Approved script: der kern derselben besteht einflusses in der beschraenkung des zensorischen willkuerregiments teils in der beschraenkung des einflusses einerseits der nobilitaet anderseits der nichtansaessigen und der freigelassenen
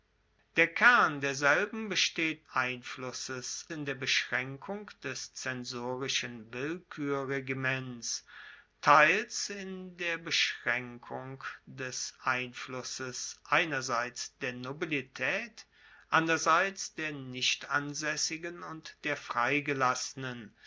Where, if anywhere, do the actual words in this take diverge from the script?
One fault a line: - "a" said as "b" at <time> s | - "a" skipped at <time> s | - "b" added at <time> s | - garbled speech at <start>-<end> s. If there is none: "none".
none